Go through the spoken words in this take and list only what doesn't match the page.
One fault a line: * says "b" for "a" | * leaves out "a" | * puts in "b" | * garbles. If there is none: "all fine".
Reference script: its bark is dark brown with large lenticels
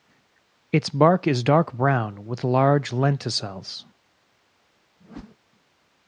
all fine